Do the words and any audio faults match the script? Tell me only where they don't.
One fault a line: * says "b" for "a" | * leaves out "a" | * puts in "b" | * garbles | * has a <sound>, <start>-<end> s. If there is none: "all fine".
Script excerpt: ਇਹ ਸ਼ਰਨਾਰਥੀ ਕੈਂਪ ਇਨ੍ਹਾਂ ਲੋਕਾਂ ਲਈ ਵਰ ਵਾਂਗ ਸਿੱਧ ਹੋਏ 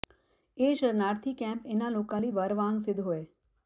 all fine